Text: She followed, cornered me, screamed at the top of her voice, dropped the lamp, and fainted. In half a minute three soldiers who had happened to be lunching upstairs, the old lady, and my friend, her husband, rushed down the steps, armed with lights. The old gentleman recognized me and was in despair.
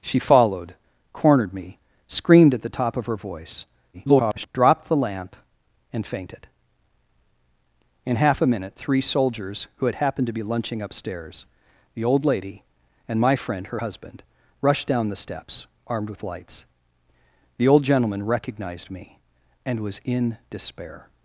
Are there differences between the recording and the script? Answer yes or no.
yes